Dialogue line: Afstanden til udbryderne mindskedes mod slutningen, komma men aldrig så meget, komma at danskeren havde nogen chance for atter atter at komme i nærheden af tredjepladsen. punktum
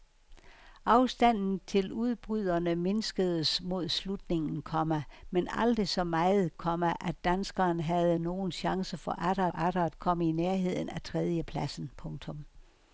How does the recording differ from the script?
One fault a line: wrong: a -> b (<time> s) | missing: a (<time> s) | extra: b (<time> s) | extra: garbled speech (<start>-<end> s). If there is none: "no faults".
no faults